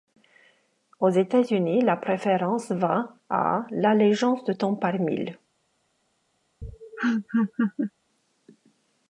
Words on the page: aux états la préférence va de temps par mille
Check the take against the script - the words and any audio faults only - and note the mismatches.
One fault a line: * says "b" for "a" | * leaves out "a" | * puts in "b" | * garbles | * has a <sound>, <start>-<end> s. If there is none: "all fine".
* puts in "unis"
* puts in "à l'allégeance"
* has a laugh, 6.6-7.9 s